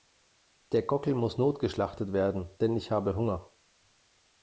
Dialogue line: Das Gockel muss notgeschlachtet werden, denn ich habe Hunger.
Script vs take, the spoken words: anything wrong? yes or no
yes